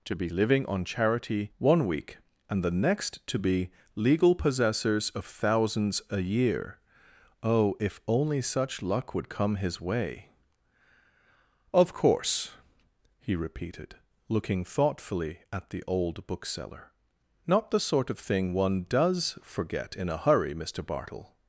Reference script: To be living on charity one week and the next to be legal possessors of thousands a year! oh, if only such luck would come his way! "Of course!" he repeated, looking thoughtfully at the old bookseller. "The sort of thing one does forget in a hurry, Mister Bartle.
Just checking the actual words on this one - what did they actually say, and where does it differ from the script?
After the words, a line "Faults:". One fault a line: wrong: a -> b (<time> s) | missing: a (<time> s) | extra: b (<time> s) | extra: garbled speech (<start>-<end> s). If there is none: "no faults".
To be living on charity one week and the next to be legal possessors of thousands a year! oh, if only such luck would come his way! "Of course!" he repeated, looking thoughtfully at the old bookseller. "Not the sort of thing one does forget in a hurry, Mister Bartle.
Faults:
extra: Not (17.5 s)